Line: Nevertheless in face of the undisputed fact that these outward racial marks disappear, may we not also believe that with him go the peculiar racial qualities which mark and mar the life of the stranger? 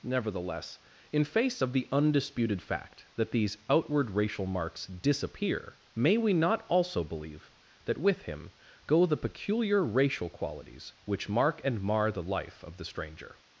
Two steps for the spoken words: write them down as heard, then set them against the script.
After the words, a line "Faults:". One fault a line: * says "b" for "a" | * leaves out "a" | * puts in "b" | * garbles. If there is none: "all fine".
Nevertheless in face of the undisputed fact that these outward racial marks disappear, may we not also believe that with him go the peculiar racial qualities which mark and mar the life of the stranger?
Faults:
all fine